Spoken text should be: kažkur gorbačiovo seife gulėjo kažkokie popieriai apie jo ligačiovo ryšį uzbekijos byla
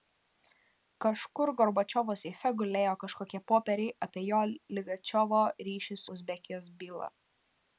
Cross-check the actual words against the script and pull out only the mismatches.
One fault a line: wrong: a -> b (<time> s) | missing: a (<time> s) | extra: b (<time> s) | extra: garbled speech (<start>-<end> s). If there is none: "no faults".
no faults